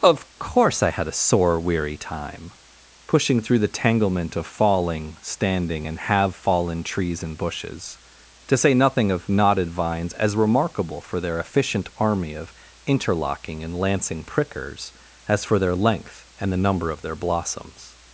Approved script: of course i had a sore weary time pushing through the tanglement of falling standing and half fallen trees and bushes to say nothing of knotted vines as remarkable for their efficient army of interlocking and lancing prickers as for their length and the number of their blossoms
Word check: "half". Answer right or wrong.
wrong